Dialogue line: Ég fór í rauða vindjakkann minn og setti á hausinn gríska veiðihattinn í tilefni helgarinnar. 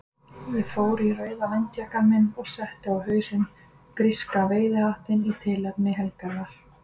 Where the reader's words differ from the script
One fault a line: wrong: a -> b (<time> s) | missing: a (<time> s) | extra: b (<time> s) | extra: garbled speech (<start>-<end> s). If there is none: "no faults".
no faults